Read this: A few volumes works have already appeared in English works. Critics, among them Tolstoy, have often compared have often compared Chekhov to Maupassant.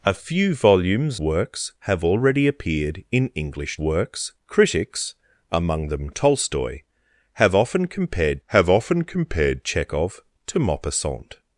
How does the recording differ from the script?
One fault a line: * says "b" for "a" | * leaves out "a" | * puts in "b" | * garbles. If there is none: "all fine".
all fine